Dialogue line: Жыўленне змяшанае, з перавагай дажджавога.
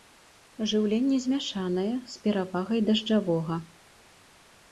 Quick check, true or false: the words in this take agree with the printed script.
true